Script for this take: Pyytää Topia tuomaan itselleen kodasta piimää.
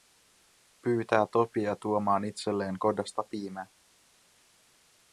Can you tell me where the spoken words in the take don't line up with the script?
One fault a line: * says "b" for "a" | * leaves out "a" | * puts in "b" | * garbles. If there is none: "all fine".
all fine